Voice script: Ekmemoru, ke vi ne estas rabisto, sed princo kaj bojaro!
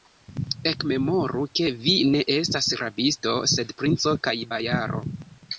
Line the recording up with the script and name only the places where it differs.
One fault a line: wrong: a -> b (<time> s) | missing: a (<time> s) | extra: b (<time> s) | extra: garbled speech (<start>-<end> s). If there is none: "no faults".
no faults